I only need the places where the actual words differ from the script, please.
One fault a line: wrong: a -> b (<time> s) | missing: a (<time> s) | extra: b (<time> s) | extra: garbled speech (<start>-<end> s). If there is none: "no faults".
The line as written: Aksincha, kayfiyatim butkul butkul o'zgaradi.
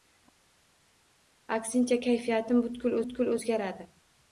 no faults